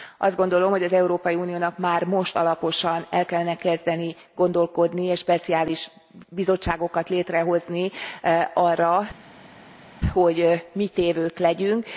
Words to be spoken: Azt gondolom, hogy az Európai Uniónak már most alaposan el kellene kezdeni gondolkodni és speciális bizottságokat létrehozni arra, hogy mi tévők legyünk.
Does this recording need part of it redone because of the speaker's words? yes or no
no